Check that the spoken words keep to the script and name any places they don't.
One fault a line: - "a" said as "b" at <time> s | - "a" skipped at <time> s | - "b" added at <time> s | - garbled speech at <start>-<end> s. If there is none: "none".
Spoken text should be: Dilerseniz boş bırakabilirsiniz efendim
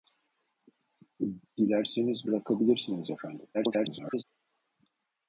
- "boş" skipped at 2.3 s
- garbled speech at 3.5-4.2 s